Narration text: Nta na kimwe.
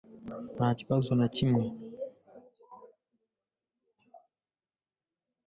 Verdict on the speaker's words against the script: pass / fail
fail